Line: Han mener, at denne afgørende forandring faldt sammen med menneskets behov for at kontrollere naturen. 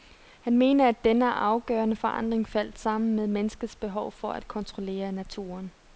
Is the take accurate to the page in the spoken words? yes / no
yes